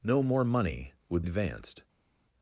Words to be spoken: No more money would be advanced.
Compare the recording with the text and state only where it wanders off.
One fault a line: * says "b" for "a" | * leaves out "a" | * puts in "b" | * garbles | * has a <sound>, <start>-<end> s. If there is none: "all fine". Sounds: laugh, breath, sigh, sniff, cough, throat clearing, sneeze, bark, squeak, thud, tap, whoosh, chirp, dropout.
* leaves out "be"